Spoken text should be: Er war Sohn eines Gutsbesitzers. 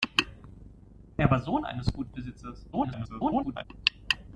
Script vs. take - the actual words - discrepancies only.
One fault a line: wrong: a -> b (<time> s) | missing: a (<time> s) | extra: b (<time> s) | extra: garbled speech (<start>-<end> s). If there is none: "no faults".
extra: garbled speech (2.7-3.6 s)